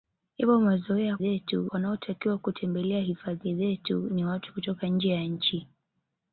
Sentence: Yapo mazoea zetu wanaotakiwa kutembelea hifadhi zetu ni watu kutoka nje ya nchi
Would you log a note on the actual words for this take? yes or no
no